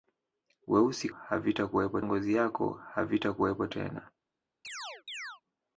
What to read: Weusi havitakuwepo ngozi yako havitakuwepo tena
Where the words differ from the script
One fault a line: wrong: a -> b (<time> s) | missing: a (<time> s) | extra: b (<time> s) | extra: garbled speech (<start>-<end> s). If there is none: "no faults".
no faults